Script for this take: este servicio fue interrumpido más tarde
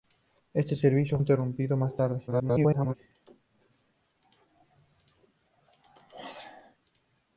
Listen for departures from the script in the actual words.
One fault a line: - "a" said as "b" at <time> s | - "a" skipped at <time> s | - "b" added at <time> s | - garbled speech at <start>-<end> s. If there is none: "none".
- "fue" skipped at 1.2 s
- garbled speech at 2.3-3.0 s